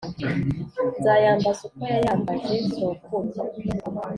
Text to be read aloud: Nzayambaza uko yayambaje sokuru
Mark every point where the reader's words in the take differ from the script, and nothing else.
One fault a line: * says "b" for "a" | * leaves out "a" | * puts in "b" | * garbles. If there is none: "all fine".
all fine